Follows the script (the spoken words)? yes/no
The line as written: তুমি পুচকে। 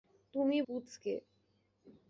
yes